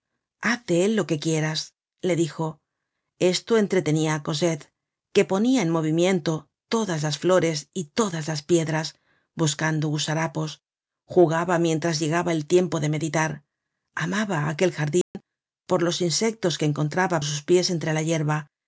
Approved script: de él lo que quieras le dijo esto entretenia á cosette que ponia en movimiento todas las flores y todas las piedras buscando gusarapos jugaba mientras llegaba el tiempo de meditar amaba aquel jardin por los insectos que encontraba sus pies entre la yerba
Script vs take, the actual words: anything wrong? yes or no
no